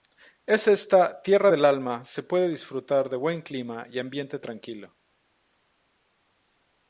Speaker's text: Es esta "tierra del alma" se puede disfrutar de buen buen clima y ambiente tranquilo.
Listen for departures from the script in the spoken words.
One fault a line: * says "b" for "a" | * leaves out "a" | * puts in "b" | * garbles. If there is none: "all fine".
* leaves out "buen"